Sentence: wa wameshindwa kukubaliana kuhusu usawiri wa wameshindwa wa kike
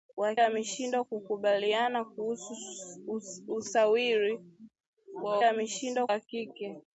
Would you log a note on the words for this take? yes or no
no